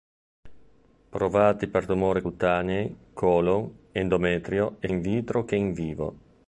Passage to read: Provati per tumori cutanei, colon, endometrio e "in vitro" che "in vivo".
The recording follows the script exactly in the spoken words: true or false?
true